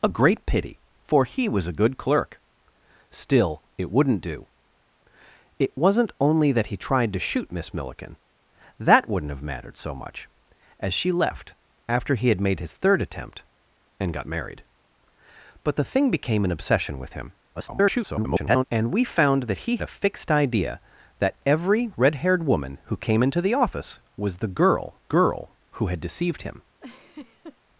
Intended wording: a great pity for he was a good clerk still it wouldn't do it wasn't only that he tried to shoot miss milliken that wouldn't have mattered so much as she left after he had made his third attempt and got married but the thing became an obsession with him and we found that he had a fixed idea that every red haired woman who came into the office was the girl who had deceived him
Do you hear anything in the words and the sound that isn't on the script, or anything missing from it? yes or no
yes